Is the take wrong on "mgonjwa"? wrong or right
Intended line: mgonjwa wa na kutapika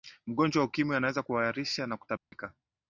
right